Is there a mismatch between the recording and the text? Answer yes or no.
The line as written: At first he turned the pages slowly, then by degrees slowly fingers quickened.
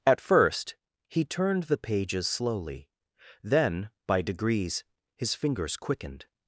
yes